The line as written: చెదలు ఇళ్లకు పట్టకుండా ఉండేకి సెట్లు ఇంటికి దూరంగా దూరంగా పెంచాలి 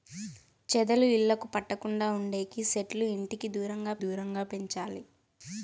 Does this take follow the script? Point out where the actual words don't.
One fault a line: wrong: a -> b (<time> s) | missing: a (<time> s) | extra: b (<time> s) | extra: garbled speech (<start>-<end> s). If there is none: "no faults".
no faults